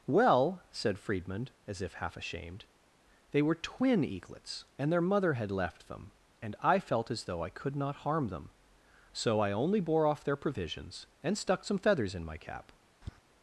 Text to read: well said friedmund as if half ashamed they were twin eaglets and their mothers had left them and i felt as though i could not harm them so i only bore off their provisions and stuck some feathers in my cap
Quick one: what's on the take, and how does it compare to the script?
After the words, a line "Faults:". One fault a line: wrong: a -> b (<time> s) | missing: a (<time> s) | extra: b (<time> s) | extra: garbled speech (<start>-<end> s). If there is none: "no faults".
well said friedmund as if half ashamed they were twin eaglets and their mother had left them and i felt as though i could not harm them so i only bore off their provisions and stuck some feathers in my cap
Faults:
wrong: mothers -> mother (5.0 s)